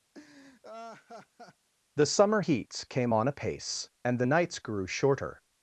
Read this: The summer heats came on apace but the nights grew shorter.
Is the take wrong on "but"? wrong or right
wrong